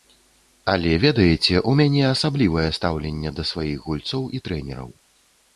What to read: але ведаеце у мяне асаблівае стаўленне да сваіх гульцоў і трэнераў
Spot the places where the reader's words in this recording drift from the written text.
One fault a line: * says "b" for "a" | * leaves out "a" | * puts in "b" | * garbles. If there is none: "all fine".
all fine